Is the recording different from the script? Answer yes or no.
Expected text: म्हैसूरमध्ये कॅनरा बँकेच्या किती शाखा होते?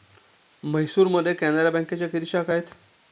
yes